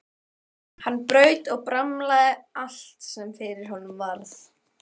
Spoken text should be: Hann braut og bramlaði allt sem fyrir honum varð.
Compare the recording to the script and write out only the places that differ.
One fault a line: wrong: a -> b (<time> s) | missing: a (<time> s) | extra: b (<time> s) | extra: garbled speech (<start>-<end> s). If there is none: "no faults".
no faults